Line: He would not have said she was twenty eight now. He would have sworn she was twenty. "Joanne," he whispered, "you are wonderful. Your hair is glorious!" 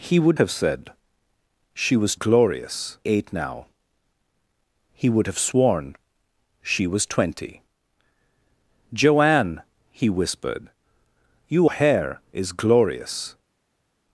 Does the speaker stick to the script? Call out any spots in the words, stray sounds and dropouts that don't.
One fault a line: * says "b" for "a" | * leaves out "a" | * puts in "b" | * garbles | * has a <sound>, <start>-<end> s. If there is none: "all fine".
* leaves out "not"
* says "glorious" for "twenty"
* leaves out "are wonderful Your"